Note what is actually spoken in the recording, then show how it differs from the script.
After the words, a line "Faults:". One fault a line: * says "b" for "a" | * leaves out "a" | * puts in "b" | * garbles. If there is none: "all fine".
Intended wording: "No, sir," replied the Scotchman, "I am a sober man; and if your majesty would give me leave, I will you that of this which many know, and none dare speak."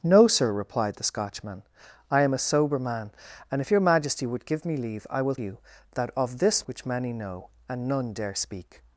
"No, sir," replied the Scotchman, "I am a sober man; and if your majesty would give me leave, I will you that of this which many know, and none dare speak."
Faults:
all fine